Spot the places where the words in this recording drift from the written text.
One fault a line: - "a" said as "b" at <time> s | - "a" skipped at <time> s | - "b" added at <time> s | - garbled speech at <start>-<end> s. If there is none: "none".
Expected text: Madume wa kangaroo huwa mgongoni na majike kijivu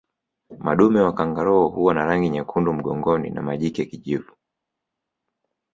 - "na rangi nyekundu" added at 1.9 s